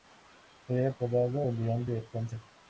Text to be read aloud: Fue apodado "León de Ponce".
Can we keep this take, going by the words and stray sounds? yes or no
no